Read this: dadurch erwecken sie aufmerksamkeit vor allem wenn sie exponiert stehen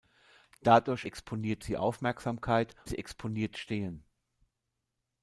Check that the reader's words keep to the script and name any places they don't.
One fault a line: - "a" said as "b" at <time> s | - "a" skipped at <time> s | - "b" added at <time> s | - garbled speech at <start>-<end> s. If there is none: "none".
- "erwecken" said as "exponiert" at 1.0 s
- "vor allem wenn" skipped at 2.7 s